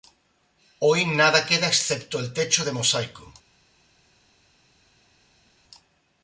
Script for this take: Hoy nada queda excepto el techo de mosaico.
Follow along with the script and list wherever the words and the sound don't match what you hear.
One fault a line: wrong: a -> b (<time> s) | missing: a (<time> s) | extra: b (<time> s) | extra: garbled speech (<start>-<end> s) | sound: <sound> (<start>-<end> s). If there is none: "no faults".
no faults